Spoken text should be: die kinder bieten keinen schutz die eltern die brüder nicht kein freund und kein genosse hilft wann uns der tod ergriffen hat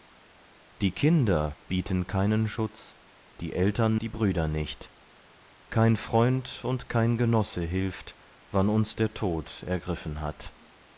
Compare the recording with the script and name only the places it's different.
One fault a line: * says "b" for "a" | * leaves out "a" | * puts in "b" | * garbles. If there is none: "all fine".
all fine